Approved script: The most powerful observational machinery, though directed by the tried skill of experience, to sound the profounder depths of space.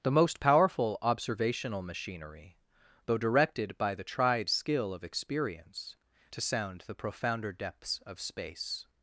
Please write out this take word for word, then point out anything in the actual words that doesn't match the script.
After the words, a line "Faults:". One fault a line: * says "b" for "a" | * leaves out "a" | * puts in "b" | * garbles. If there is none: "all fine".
The most powerful observational machinery, though directed by the tried skill of experience, to sound the profounder depths of space.
Faults:
all fine